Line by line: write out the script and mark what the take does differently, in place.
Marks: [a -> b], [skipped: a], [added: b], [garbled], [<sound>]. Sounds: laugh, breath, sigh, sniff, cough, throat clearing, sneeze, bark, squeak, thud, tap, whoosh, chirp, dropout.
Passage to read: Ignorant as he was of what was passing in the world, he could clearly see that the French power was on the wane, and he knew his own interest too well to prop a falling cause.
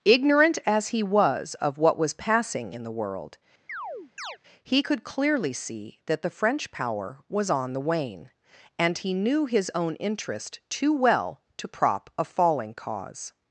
Ignorant as he was of what was passing in the world, [chirp] he could clearly see that the French power was on the wane, and he knew his own interest too well to prop a falling cause.